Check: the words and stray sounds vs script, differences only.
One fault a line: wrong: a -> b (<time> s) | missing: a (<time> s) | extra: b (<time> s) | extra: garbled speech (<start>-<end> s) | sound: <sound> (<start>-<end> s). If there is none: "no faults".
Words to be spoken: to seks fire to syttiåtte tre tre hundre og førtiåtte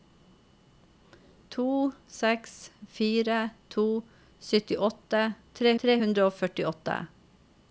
no faults